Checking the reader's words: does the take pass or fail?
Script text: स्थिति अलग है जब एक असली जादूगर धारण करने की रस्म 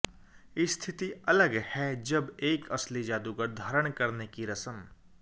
pass